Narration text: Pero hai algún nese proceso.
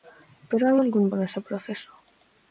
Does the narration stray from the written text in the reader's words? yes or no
no